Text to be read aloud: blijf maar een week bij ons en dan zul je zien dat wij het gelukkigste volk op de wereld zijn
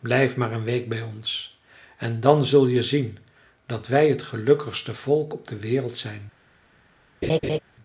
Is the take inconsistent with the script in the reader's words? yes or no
no